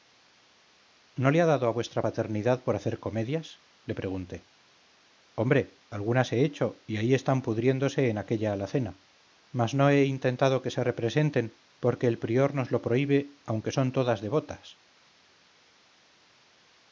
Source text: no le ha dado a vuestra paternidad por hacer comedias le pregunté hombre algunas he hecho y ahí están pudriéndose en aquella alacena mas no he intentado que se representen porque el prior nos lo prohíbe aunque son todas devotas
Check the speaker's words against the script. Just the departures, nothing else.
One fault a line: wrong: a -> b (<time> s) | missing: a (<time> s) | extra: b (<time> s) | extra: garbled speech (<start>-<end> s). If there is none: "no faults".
no faults